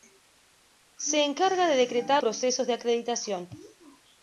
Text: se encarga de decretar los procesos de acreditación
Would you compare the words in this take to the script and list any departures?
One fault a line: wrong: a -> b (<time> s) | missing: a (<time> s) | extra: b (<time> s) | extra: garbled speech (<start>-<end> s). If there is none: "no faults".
missing: los (2.2 s)